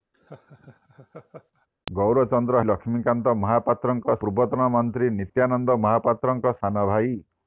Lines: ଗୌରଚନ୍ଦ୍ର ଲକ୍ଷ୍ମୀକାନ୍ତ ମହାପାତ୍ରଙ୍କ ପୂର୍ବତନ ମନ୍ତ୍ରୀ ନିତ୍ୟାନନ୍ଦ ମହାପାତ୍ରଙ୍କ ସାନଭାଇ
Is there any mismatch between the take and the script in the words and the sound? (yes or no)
yes